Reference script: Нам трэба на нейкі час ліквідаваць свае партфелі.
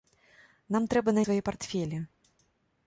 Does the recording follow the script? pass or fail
fail